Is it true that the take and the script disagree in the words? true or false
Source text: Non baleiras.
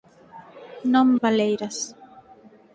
false